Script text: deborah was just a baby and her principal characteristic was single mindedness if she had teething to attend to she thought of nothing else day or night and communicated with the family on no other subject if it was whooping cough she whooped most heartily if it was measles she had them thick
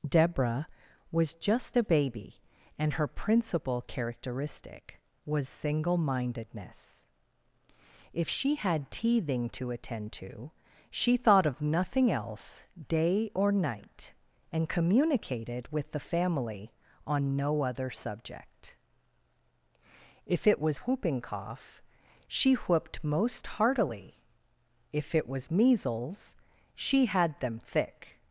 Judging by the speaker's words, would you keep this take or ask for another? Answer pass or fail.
pass